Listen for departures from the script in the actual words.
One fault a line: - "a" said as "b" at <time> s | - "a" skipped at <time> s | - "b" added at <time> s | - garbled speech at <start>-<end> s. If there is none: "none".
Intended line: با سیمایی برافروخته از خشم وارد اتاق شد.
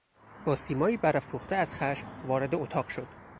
none